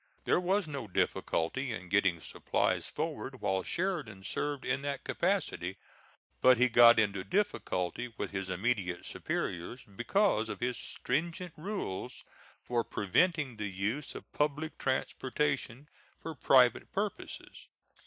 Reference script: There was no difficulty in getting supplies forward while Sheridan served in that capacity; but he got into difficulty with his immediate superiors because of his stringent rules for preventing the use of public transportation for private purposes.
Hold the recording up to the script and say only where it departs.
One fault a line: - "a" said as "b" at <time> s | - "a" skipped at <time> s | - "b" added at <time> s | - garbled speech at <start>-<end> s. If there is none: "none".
none